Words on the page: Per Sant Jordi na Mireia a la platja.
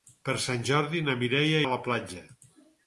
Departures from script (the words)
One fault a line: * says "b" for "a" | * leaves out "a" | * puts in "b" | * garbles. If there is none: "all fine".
all fine